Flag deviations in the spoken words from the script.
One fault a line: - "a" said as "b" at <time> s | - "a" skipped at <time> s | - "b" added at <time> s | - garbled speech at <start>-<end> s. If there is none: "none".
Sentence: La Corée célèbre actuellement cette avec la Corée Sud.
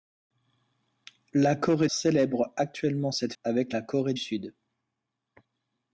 none